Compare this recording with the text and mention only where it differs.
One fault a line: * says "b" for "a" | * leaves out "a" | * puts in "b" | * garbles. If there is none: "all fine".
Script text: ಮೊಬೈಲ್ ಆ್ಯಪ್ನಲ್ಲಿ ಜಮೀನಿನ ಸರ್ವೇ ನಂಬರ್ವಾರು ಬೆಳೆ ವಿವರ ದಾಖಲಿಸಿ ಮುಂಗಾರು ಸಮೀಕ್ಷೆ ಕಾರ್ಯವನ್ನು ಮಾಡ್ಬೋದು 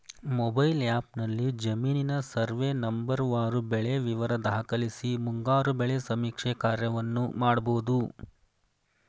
* puts in "ಬೆಳೆ"